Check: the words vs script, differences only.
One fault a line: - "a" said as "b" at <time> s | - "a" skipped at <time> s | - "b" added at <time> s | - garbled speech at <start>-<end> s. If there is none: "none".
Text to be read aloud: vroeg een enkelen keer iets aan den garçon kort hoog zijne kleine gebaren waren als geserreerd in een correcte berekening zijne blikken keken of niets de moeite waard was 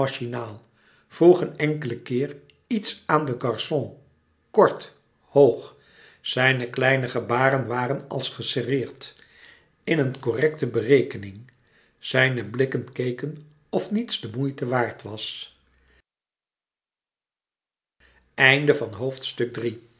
none